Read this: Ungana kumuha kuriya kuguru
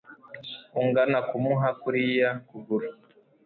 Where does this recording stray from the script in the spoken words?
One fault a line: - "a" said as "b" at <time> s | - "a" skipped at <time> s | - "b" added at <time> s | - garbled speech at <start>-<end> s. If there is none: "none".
none